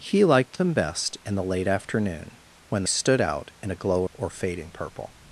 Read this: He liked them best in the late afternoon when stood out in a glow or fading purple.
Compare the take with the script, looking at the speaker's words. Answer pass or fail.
pass